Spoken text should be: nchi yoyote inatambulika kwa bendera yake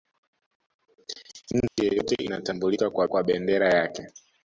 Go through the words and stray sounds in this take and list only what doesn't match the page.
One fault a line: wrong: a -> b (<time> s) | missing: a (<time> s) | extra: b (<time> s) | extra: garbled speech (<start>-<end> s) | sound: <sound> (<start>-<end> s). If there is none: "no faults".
sound: dropout (1.7-1.8 s)
extra: kwa (3.0 s)